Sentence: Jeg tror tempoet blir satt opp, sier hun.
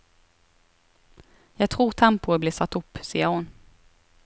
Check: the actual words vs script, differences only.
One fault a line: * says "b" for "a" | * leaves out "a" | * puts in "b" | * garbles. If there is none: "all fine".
all fine